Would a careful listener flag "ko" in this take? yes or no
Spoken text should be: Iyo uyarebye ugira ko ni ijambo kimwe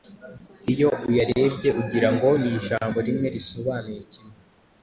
yes